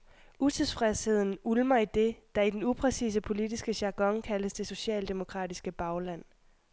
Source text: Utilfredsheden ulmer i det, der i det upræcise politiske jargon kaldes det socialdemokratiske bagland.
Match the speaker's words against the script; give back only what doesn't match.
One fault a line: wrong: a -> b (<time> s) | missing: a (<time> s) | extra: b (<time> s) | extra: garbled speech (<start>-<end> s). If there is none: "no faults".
wrong: det -> den (2.5 s)